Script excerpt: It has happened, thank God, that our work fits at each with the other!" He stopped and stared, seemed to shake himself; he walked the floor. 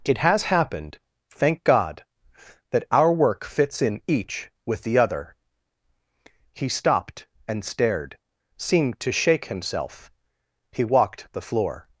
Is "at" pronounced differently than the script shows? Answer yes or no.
yes